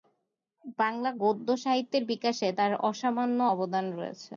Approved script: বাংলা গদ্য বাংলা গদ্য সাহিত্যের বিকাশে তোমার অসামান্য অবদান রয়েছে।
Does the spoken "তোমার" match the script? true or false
false